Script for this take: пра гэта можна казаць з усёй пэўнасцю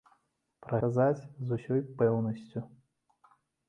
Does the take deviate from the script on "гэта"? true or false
true